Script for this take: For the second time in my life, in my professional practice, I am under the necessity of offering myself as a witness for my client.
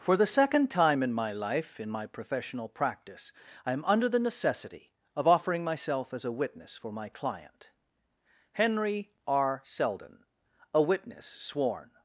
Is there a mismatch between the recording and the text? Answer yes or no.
yes